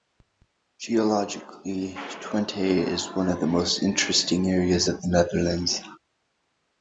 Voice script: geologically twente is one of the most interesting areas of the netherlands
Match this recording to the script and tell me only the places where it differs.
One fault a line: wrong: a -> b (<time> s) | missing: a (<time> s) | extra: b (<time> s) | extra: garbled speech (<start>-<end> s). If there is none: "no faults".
no faults